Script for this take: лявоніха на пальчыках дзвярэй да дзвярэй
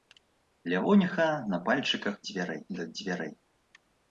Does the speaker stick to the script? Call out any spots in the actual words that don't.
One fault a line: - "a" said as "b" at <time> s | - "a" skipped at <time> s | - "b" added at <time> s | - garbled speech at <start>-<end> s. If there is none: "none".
none